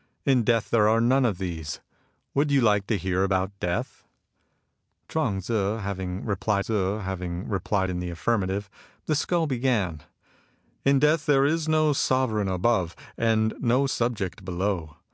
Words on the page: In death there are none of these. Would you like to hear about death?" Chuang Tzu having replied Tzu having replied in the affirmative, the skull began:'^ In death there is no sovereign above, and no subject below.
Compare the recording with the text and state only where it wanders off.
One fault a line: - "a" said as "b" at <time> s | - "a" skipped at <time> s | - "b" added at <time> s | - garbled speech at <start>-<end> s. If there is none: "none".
none